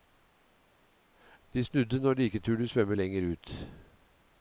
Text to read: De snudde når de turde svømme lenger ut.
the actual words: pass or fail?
fail